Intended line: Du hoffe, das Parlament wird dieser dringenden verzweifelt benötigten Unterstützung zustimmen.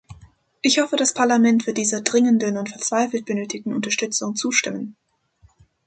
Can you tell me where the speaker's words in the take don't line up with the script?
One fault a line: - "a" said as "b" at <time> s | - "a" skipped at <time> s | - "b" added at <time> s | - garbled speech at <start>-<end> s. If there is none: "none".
- "Du" said as "Ich" at 0.6 s
- "und" added at 2.6 s